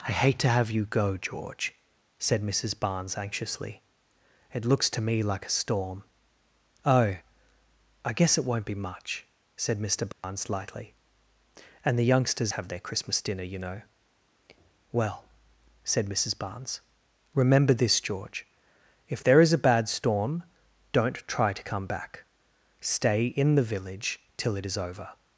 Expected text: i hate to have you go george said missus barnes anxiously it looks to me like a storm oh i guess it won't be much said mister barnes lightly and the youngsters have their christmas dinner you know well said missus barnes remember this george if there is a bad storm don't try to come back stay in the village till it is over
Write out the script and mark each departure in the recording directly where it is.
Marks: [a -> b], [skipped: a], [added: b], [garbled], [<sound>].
i hate to have you go george said missus barnes anxiously it looks to me like a storm oh i guess it won't be much said mister barnes [dropout] lightly and the youngsters have their christmas dinner you know well said missus barnes remember this george if there is a bad storm don't try to come back stay in the village till it is over